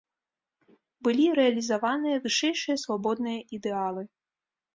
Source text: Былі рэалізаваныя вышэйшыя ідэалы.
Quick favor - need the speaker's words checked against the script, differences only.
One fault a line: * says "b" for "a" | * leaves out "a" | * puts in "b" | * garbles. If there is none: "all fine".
* puts in "свабодныя"